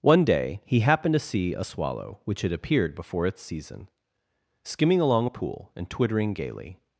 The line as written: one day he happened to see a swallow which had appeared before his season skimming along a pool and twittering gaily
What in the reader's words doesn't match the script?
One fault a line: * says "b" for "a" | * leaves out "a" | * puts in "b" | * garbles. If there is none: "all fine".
* says "its" for "his"